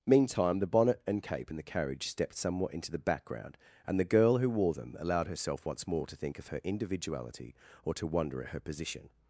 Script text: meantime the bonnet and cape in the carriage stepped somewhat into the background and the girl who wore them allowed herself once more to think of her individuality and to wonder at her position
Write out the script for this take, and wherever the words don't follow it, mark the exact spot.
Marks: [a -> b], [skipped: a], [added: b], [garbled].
meantime the bonnet and cape in the carriage stepped somewhat into the background and the girl who wore them allowed herself once more to think of her individuality [and -> or] to wonder at her position